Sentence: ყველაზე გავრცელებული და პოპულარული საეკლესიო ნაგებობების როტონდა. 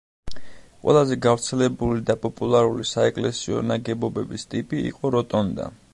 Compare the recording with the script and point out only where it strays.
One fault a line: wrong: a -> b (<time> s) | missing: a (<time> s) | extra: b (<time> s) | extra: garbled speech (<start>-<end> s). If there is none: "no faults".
extra: ტიპი იყო (4.5 s)